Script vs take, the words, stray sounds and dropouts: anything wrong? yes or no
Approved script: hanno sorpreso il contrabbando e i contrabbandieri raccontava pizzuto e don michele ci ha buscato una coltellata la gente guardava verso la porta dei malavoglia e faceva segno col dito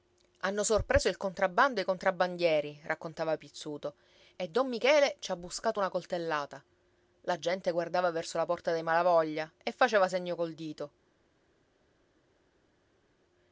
no